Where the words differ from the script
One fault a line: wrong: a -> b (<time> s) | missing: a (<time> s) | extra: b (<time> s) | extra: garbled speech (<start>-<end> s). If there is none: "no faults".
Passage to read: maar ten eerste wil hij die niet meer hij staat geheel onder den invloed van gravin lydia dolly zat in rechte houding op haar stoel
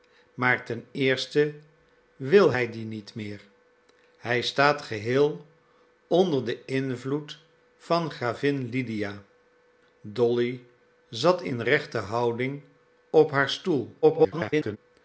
extra: garbled speech (14.0-14.8 s)